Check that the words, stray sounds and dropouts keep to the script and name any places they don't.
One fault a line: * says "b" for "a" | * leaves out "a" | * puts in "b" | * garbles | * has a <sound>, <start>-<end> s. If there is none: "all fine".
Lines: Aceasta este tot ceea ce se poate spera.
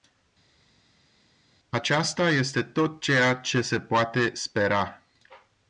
all fine